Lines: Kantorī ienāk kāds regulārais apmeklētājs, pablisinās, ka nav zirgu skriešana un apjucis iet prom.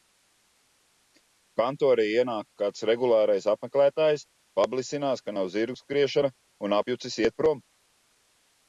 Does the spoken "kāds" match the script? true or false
true